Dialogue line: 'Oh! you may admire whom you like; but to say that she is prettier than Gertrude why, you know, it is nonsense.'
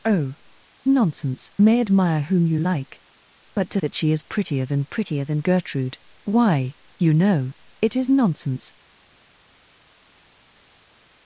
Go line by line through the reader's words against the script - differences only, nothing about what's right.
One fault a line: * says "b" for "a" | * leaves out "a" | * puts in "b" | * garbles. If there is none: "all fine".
* says "nonsense" for "you"
* leaves out "say"
* puts in "prettier than"